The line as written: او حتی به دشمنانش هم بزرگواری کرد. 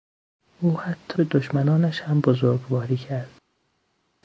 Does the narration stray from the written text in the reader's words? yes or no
no